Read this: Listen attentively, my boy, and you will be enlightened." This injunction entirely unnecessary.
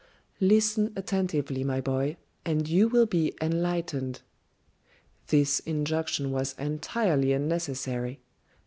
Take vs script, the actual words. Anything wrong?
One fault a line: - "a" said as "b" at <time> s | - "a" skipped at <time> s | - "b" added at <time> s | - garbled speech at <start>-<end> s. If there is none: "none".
- "was" added at 6.3 s